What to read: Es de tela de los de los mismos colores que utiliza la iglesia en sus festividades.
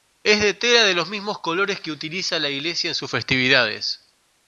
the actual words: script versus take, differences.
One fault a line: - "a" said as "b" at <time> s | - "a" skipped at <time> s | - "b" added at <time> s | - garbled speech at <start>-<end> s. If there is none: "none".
- "de los" skipped at 1.1 s